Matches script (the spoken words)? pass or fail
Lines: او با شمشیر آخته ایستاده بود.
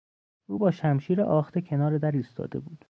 fail